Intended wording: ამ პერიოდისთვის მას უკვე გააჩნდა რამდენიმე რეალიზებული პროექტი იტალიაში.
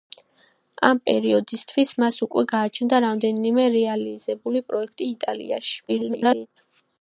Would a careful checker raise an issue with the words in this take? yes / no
yes